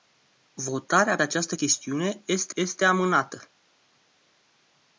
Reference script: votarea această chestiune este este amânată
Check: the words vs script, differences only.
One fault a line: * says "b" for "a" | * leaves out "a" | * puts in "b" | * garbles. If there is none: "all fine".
all fine